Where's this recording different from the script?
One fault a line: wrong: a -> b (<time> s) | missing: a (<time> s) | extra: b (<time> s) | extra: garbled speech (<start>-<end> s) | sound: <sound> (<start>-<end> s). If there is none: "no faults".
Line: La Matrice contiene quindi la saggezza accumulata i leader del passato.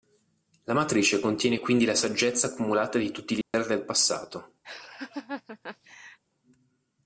extra: di tutti (3.0 s)
sound: dropout (3.4-3.5 s)
sound: laugh (4.6-6.2 s)